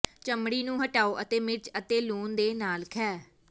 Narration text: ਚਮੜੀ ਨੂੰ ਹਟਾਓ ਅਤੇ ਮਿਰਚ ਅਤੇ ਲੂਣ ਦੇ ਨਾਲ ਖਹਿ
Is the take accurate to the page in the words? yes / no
yes